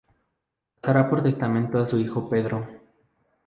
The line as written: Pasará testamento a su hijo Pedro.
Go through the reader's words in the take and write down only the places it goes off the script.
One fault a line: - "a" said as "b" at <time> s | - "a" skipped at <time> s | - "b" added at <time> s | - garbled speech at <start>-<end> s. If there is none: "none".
- "por" added at 1.1 s